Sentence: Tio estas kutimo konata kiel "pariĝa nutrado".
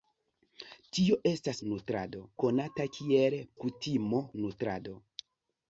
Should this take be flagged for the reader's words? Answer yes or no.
yes